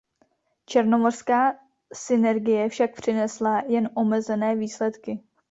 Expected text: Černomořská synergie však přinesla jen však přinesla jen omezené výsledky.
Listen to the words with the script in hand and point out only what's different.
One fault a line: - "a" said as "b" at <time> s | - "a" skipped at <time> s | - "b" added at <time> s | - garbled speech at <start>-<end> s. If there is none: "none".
- "však přinesla jen" skipped at 3.9 s